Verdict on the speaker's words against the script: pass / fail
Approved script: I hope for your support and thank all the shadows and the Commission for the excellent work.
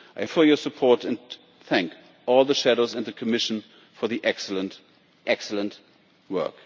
fail